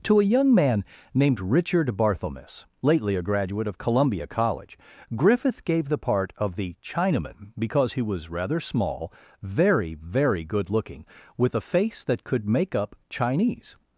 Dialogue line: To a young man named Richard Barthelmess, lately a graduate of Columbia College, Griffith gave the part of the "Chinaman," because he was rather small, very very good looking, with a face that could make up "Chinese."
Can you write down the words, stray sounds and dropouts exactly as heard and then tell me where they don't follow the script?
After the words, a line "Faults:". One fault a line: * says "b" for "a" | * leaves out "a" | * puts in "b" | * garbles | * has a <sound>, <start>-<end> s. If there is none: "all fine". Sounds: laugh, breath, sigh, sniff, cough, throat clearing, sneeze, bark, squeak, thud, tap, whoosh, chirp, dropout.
To a young man named Richard Barthelmess, lately a graduate of Columbia College, Griffith gave the part of the "Chinaman," because he was rather small, very very good looking, with a face that could make up "Chinese."
Faults:
all fine